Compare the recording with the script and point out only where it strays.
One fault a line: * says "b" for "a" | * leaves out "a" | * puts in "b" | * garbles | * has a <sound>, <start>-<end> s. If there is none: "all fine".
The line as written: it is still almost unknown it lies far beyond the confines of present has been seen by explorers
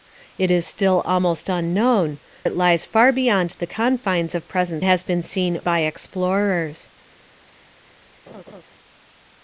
* has a laugh, 8.3-8.6 s